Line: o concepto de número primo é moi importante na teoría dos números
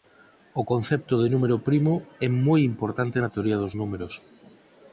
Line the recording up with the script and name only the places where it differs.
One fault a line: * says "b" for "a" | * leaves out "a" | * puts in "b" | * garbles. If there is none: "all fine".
all fine